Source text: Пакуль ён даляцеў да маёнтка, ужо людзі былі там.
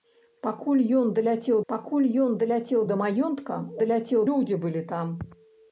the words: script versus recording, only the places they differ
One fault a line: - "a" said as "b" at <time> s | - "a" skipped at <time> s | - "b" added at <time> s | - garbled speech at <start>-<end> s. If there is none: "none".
- "пакуль ён даляцеў" added at 1.7 s
- "ужо" said as "даляцеў" at 3.8 s